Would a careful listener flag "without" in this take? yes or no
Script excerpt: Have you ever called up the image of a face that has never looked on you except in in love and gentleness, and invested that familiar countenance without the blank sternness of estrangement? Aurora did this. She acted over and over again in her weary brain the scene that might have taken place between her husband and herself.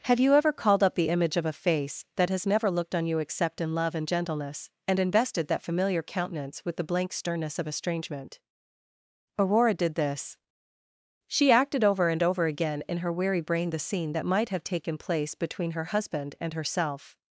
yes